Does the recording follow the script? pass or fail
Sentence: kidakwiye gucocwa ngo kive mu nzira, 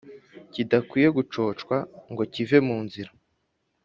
pass